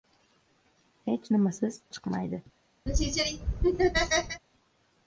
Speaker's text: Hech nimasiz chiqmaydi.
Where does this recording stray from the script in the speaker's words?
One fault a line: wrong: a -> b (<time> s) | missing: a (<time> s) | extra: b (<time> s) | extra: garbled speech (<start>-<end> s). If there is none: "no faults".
no faults